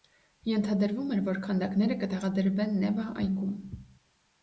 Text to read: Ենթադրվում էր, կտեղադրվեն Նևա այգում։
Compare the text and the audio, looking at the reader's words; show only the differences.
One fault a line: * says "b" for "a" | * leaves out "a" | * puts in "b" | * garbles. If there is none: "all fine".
* puts in "որ քանդակները"